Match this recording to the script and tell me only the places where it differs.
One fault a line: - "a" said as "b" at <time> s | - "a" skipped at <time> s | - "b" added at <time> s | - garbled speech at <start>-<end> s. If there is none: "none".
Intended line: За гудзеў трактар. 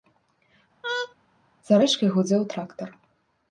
- "рэчкай" added at 1.8 s